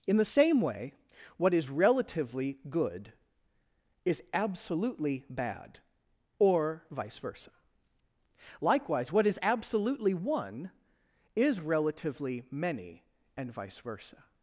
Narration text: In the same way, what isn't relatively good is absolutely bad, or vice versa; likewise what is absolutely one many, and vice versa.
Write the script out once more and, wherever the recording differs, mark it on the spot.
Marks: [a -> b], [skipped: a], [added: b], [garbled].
In the same way, what [isn't -> is] relatively good is absolutely bad, or vice versa; likewise what is absolutely one [added: is relatively] many, and vice versa.